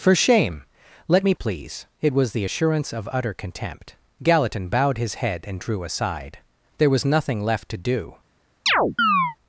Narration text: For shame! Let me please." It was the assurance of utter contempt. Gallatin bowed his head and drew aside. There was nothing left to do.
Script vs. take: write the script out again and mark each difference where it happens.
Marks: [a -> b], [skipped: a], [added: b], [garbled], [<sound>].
For shame! Let me please." It was the assurance of utter contempt. Gallatin bowed his head and drew aside. There was nothing left to do. [chirp]